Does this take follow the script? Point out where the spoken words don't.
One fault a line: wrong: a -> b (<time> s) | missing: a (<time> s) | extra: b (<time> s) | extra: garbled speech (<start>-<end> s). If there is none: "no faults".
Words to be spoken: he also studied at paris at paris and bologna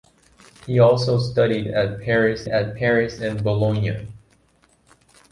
no faults